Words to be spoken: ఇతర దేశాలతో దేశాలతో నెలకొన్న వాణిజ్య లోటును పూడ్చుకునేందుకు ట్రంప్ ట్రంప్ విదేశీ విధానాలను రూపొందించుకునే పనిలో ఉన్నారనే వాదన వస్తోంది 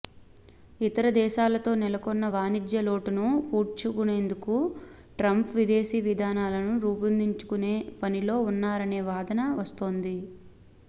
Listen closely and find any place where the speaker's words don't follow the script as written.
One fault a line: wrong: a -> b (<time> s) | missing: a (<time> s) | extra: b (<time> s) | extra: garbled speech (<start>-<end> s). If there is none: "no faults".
missing: దేశాలతో (1.7 s)
missing: ట్రంప్ (5.5 s)